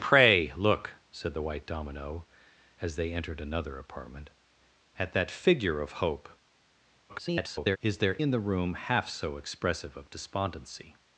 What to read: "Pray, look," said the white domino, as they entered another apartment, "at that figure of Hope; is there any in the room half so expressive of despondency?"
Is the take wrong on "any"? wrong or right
wrong